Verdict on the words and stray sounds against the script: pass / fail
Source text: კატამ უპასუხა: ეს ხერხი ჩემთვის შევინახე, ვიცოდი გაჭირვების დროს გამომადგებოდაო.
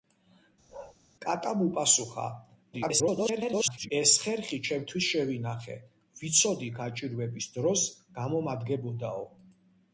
fail